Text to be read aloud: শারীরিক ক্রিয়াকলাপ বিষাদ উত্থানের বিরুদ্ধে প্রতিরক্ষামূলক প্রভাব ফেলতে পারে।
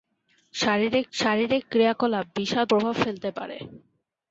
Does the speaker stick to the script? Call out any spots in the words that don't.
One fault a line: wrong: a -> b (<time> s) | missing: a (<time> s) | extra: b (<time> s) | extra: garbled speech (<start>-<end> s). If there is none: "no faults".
extra: শারীরিক (1.1 s)
missing: উত্থানের বিরুদ্ধে প্রতিরক্ষামূলক (2.7 s)